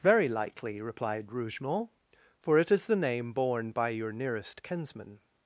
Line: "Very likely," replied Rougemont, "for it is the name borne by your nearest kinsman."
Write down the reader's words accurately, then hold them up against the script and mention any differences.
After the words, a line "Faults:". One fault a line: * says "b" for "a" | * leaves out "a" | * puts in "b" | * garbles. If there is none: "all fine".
"Very likely," replied Rougemont, "for it is the name borne by your nearest kinsman."
Faults:
all fine